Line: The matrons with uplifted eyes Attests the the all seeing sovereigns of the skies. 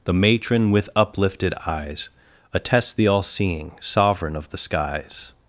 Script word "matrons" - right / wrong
wrong